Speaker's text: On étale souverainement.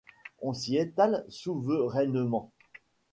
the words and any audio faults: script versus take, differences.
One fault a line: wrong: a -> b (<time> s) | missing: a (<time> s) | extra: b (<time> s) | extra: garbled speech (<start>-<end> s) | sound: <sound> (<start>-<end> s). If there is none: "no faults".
extra: s'y (0.5 s)